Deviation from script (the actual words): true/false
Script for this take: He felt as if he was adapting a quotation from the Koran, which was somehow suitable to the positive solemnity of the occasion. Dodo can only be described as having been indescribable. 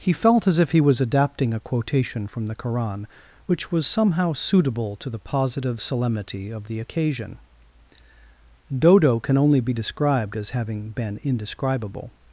false